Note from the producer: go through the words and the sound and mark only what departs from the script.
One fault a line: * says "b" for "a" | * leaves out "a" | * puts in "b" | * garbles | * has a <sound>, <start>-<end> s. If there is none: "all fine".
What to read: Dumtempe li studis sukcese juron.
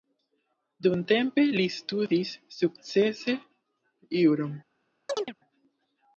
* has a chirp, 5.1-5.3 s